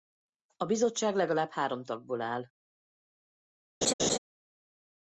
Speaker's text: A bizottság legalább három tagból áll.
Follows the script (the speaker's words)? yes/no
yes